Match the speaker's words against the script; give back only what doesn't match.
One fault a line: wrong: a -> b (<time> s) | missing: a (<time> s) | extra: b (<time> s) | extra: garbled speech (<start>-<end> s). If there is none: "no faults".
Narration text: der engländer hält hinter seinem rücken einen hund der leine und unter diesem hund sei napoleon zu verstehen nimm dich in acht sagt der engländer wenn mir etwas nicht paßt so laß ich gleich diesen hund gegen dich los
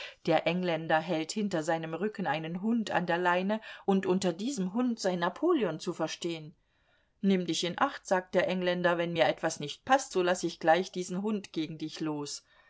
extra: an (2.9 s)